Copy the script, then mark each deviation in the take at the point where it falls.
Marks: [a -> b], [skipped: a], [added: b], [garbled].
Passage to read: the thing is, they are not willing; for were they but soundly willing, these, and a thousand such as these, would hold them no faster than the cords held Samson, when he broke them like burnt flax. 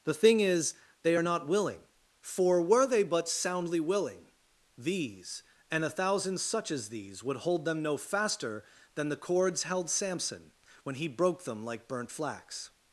the thing is, they are not willing; for were they but soundly willing, these, and a thousand such as these, would hold them no faster than the cords held Samson, when he broke them like burnt flax.